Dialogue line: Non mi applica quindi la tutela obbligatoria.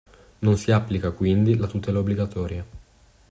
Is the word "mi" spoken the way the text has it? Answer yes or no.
no